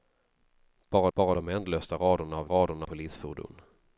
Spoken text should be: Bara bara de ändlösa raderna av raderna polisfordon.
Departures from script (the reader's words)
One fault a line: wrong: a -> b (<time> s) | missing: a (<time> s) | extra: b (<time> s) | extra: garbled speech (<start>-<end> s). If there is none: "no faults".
no faults